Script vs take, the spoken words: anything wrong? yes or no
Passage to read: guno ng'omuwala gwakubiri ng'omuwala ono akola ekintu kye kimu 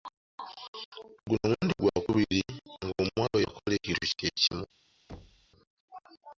yes